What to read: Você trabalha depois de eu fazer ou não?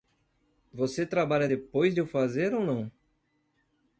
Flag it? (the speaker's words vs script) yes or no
no